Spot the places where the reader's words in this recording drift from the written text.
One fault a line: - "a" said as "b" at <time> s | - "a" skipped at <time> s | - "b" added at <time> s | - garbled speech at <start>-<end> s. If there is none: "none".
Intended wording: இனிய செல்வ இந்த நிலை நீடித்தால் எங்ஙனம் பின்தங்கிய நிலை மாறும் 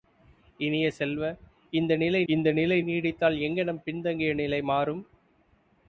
- "இந்த நிலை" added at 2.3 s